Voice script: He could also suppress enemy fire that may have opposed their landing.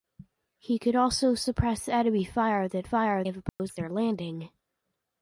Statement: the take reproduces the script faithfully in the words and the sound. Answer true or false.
false